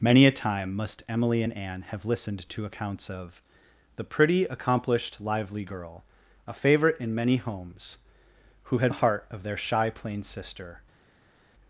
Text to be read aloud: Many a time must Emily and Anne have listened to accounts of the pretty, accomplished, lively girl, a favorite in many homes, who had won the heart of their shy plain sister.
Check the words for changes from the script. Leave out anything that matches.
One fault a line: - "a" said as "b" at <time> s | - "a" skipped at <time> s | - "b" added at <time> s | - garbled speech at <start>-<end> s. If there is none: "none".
- "won" skipped at 8.9 s